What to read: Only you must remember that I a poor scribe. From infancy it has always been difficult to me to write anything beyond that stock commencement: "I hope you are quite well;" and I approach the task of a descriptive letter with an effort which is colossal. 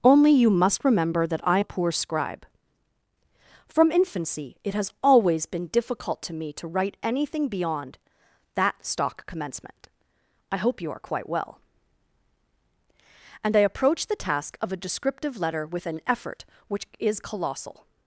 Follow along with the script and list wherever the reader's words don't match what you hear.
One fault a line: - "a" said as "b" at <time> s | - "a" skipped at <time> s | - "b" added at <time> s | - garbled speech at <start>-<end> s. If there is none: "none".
none